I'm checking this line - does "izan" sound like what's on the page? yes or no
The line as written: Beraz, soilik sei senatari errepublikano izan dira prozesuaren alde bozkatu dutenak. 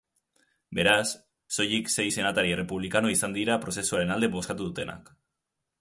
yes